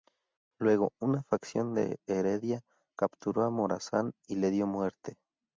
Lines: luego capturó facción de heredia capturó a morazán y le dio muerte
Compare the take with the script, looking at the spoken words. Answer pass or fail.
fail